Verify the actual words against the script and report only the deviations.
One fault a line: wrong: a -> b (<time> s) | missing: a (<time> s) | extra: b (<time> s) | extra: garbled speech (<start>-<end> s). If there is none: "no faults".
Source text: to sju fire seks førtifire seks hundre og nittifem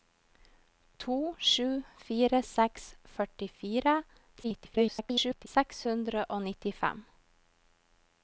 extra: garbled speech (4.4-5.5 s)